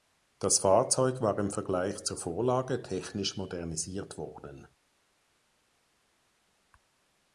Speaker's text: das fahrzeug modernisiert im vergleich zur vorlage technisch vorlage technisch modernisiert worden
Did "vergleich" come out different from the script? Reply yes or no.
no